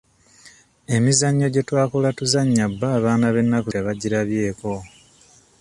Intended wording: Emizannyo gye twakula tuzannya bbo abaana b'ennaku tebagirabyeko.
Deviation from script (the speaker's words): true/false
false